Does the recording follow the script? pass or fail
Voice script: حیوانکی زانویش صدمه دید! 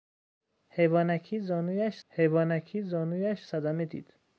fail